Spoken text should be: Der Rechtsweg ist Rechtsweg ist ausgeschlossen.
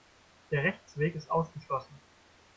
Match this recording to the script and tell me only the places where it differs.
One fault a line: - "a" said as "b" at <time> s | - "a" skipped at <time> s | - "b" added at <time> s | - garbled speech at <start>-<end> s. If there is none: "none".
- "Rechtsweg ist" skipped at 1.3 s